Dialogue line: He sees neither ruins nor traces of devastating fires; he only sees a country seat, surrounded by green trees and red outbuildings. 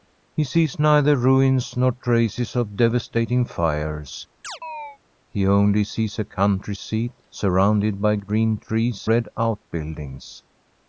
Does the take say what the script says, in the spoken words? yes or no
no